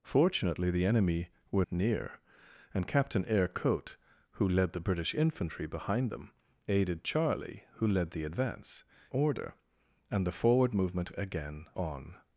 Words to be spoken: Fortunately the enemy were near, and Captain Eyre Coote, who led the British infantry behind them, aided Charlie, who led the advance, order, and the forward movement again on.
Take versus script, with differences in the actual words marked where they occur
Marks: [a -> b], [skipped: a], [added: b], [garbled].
Fortunately the enemy were near, and Captain Eyre Coote, who led the British infantry behind them, aided Charlie, who led the advance, order, and the forward movement again on.